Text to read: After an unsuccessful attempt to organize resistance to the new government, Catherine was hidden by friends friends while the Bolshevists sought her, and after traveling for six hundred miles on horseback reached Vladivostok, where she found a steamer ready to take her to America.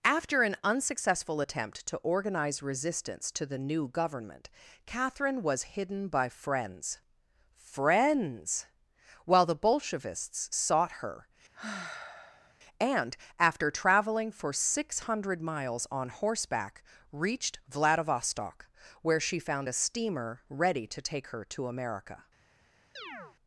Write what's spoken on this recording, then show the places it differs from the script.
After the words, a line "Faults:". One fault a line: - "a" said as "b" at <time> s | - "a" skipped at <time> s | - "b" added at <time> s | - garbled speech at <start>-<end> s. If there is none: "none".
After an unsuccessful attempt to organize resistance to the new government, Catherine was hidden by friends friends while the Bolshevists sought her, and after traveling for six hundred miles on horseback reached Vladivostok, where she found a steamer ready to take her to America.
Faults:
none